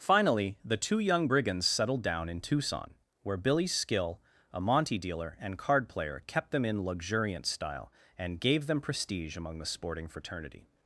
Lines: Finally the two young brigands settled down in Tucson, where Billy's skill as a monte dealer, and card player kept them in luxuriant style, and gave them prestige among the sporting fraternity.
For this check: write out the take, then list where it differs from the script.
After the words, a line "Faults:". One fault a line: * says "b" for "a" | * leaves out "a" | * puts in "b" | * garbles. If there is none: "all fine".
Finally the two young brigands settled down in Tucson, where Billy's skill a monte dealer, and card player kept them in luxuriant style, and gave them prestige among the sporting fraternity.
Faults:
* leaves out "as"